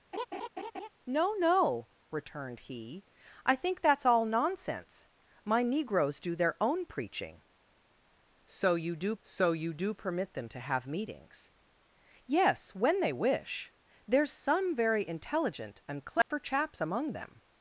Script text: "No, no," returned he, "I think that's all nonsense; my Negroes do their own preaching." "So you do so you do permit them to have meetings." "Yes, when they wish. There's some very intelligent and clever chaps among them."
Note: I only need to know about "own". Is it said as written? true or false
true